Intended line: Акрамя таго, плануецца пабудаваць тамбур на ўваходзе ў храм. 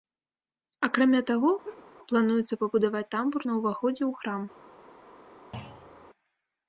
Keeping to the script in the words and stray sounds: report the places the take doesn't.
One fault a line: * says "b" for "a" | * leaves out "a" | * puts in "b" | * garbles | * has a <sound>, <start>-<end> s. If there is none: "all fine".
* has a laugh, 1.6-1.8 s
* has a thud, 5.5-6.1 s